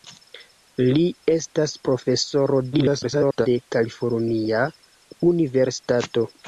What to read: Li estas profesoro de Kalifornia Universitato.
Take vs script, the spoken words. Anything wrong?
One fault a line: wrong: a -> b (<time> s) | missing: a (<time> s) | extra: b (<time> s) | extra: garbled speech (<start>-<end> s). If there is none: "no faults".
extra: garbled speech (2.7-3.5 s)